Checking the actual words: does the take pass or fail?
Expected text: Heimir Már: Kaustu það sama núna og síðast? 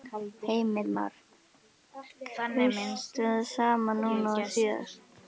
pass